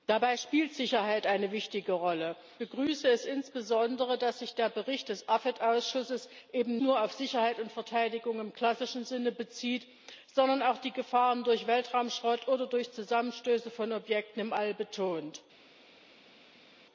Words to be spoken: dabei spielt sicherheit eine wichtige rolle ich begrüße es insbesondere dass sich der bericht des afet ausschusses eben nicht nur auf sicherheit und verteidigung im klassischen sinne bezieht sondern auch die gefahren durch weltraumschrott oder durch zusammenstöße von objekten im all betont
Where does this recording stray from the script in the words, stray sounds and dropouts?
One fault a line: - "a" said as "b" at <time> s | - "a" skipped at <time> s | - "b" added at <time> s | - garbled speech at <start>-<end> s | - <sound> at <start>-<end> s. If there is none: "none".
- "ich" skipped at 2.4 s
- "nicht" skipped at 6.8 s